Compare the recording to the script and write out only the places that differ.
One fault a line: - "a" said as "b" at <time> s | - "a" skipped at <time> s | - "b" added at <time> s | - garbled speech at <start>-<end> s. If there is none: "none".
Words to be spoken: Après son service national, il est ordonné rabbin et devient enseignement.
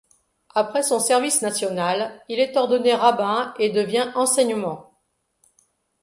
none